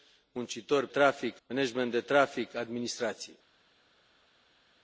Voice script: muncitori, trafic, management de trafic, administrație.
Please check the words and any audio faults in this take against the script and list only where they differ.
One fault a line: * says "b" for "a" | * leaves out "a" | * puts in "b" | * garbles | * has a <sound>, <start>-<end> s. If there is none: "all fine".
all fine